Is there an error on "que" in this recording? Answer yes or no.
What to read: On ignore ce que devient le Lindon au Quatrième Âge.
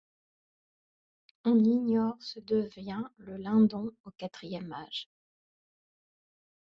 yes